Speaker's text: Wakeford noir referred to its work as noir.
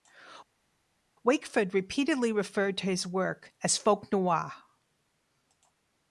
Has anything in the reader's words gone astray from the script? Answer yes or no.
yes